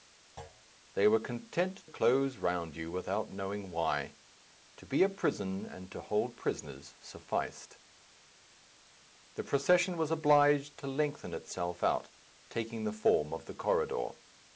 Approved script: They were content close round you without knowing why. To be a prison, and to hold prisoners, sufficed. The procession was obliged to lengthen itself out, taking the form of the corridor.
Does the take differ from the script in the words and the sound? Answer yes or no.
yes